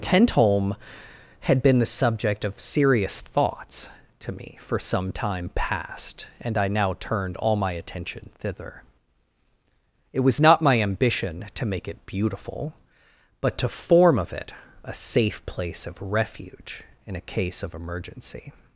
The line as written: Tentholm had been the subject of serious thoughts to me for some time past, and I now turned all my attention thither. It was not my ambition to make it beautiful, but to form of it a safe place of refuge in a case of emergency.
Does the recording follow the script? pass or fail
pass